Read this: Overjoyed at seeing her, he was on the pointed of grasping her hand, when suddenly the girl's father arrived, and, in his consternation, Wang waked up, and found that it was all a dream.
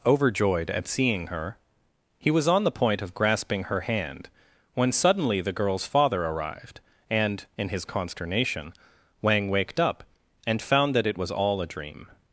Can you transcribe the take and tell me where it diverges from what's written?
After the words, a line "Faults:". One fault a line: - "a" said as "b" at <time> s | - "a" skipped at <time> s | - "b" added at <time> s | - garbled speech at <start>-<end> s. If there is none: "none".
Overjoyed at seeing her, he was on the point of grasping her hand, when suddenly the girl's father arrived, and, in his consternation, Wang waked up, and found that it was all a dream.
Faults:
- "pointed" said as "point" at 2.7 s